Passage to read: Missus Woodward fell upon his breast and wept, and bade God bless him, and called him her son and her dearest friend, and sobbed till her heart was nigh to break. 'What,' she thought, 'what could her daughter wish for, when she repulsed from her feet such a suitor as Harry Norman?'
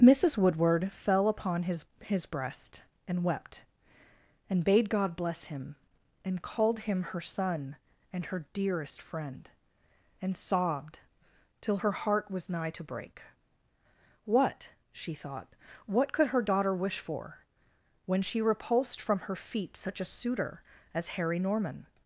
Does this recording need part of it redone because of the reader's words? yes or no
yes